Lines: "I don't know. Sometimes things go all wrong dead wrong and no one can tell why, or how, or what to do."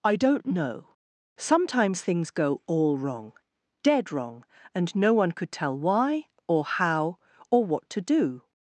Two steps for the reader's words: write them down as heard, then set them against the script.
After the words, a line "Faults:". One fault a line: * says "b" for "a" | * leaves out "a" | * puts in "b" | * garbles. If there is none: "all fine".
"I don't know. Sometimes things go all wrong dead wrong and no one could tell why, or how, or what to do."
Faults:
* says "could" for "can"